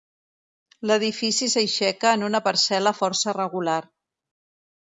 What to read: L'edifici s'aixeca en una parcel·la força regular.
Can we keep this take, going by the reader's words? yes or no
yes